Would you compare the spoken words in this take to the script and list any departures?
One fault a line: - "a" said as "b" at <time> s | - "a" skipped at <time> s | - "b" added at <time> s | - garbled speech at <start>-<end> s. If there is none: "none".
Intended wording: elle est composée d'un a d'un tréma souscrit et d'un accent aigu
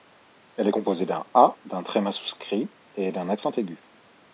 none